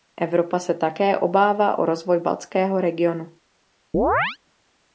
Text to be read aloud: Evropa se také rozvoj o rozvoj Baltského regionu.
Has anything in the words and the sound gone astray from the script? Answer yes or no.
yes